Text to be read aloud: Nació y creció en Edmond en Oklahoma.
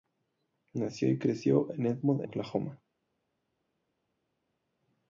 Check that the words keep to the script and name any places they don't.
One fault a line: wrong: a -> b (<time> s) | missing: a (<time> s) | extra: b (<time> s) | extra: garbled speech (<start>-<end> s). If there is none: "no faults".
missing: en (2.3 s)